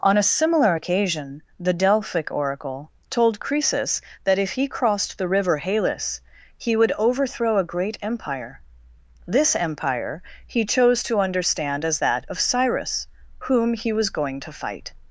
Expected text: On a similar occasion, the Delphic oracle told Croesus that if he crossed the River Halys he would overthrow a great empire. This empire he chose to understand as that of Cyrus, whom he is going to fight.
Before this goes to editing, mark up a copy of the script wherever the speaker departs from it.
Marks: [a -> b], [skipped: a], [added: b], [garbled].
On a similar occasion, the Delphic oracle told Croesus that if he crossed the River Halys he would overthrow a great empire. This empire he chose to understand as that of Cyrus, whom he [is -> was] going to fight.